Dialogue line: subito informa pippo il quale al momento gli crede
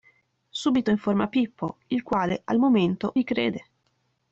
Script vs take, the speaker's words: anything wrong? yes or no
no